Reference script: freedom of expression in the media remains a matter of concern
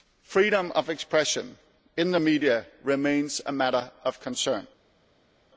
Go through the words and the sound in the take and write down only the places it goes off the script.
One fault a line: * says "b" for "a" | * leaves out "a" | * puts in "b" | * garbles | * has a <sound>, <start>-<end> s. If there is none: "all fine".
all fine